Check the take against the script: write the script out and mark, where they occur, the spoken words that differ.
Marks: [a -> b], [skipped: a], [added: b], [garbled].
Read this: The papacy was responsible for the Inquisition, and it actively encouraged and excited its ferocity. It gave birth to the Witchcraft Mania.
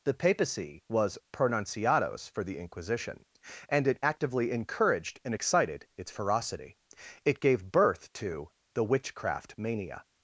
The papacy was [responsible -> pronunciados] for the Inquisition, and it actively encouraged and excited its ferocity. It gave birth to the Witchcraft Mania.